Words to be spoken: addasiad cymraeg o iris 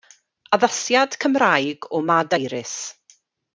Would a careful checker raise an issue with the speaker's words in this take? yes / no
yes